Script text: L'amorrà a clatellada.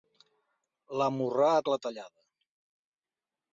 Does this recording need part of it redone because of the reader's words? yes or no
no